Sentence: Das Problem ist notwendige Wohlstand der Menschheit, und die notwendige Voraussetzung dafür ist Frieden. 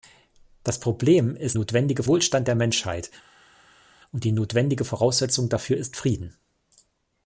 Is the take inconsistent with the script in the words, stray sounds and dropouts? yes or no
no